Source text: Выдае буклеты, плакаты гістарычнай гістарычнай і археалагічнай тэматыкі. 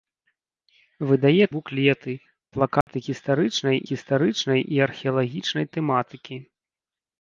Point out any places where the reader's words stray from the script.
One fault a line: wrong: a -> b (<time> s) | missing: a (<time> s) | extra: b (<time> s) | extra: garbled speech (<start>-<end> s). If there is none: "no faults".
no faults